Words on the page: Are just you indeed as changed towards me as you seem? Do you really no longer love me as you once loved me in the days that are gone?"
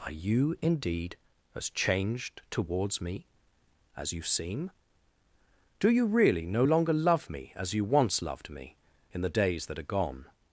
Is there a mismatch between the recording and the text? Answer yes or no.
yes